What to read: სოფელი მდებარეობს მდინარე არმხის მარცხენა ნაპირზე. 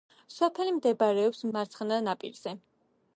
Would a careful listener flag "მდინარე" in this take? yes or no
yes